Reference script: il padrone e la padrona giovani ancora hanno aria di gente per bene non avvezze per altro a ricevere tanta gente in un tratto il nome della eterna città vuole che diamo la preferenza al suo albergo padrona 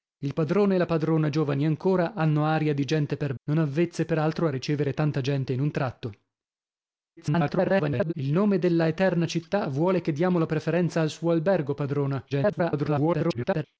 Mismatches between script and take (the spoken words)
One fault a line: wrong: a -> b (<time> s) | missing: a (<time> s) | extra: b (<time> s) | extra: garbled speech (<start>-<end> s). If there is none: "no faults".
missing: bene (3.3 s)
extra: garbled speech (7.2-8.1 s)
extra: garbled speech (12.3-13.6 s)